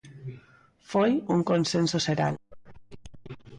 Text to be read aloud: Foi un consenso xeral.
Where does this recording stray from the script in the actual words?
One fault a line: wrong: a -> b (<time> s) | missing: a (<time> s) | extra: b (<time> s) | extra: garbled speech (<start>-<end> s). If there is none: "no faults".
no faults